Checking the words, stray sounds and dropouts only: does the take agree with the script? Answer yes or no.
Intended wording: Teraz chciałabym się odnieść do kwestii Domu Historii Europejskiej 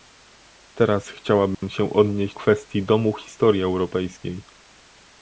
no